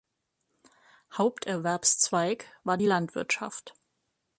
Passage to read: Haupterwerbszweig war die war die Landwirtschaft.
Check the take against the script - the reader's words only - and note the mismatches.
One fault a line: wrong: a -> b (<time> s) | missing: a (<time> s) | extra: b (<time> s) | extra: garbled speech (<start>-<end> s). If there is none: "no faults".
missing: war die (2.9 s)